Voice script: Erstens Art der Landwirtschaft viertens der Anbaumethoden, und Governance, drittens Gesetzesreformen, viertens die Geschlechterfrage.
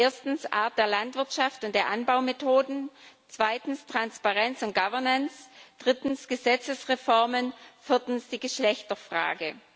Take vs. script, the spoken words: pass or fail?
fail